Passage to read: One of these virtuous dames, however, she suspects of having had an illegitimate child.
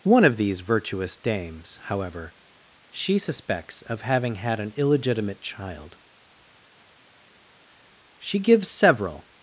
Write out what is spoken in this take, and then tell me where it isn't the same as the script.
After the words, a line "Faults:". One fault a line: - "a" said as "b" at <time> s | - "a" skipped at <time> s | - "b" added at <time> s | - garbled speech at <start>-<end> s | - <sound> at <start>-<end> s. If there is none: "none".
One of these virtuous dames, however, she suspects of having had an illegitimate child. She gives several
Faults:
- "She gives several" added at 8.2 s